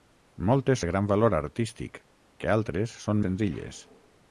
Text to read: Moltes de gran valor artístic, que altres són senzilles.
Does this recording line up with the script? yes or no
yes